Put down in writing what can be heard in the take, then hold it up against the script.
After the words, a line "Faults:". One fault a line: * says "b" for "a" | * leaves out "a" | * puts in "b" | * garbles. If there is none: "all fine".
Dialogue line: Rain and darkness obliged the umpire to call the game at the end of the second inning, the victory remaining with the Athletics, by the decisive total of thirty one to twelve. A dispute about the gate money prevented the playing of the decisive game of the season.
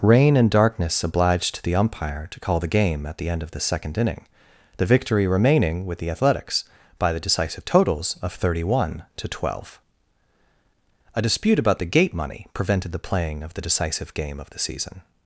Rain and darkness obliged the umpire to call the game at the end of the second inning, the victory remaining with the Athletics, by the decisive totals of thirty one to twelve. A dispute about the gate money prevented the playing of the decisive game of the season.
Faults:
* says "totals" for "total"